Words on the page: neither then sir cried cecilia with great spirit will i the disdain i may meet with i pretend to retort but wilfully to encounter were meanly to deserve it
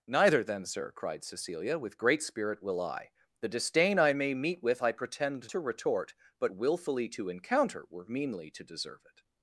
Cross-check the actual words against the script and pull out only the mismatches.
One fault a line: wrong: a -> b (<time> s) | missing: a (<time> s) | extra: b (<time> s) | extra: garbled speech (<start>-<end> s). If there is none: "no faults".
no faults